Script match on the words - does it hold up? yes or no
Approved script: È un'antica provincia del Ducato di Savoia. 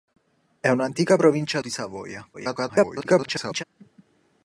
no